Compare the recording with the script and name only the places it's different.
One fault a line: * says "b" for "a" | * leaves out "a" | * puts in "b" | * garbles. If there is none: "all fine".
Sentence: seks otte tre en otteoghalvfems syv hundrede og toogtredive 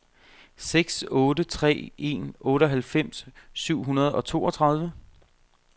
all fine